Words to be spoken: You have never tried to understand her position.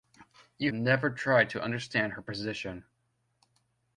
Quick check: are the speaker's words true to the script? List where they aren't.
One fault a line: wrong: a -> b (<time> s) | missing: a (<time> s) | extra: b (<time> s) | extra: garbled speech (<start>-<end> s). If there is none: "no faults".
missing: have (0.7 s)